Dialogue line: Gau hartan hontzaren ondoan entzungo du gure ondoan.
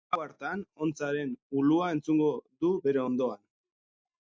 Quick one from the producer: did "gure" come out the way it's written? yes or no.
no